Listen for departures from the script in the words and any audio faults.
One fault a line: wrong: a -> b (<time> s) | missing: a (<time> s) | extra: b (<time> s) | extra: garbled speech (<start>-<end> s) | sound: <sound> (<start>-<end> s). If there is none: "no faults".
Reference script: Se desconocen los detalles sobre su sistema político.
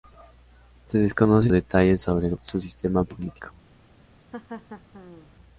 missing: los (1.5 s)
sound: laugh (4.3-5.3 s)